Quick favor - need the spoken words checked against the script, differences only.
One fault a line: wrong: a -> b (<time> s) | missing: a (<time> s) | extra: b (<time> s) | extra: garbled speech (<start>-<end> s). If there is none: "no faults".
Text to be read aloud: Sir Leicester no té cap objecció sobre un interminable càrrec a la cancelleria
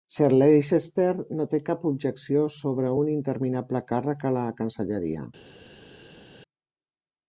no faults